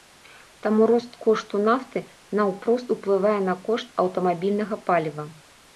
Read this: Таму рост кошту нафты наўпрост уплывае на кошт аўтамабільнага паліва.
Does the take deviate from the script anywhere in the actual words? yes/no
no